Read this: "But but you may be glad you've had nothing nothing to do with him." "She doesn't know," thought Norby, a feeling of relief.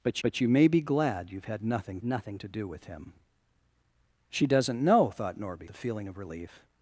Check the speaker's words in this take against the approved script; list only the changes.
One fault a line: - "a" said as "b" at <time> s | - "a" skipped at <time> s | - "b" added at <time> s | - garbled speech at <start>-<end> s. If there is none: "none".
none